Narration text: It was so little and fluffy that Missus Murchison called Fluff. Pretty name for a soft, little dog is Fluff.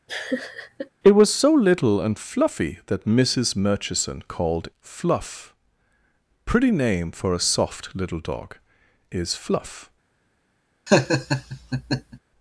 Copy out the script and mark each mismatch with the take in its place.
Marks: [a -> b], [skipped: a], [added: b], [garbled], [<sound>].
[laugh] It was so little and fluffy that Missus Murchison called Fluff. Pretty name for a soft, little dog is Fluff. [laugh]